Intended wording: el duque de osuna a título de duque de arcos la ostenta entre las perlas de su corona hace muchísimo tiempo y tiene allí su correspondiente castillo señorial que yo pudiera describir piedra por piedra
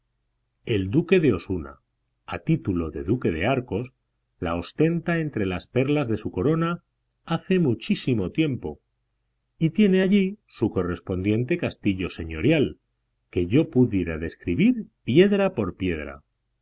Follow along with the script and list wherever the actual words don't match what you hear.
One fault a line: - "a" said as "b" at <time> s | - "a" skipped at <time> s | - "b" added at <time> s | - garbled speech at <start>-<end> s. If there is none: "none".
none